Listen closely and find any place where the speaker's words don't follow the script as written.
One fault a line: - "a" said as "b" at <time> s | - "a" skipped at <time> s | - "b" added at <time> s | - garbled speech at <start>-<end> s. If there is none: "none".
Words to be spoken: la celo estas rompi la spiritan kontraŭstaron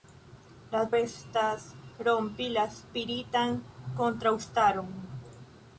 - "celo" skipped at 0.8 s